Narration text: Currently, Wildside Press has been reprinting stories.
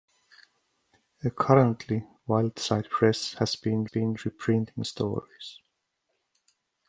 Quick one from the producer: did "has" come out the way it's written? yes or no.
yes